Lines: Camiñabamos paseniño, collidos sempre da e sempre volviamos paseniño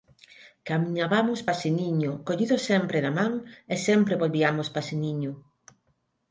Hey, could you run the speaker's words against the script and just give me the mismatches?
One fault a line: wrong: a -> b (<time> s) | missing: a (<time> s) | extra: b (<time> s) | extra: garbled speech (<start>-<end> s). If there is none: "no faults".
extra: man (3.2 s)